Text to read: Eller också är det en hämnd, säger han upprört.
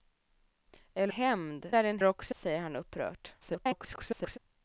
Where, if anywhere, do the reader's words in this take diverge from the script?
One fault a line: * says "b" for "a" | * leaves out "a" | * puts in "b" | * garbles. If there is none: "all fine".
* says "hämnd" for "också"
* says "också" for "hämnd"
* garbles